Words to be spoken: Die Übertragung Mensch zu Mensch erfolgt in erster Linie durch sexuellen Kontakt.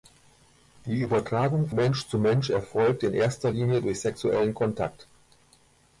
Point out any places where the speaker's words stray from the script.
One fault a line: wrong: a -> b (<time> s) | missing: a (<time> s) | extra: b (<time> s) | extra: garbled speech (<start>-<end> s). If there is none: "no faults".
no faults